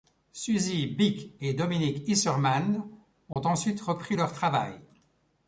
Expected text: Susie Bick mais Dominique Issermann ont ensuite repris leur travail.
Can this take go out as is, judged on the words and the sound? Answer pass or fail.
fail